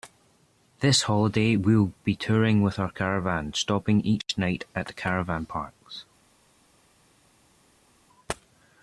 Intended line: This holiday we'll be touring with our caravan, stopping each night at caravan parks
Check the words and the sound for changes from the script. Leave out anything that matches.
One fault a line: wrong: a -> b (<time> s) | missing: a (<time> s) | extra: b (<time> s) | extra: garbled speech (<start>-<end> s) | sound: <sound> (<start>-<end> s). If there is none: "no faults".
no faults